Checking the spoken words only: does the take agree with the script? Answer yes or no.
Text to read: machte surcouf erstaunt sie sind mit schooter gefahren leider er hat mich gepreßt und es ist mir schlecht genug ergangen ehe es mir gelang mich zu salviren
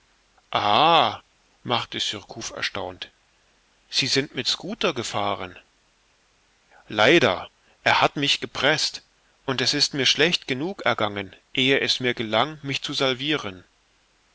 yes